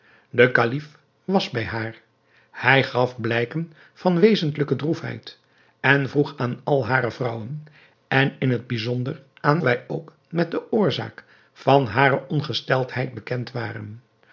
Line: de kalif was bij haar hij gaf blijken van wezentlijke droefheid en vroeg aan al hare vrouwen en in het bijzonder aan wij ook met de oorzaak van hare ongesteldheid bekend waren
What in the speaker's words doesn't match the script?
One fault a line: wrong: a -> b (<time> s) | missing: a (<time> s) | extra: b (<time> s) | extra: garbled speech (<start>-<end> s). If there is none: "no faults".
no faults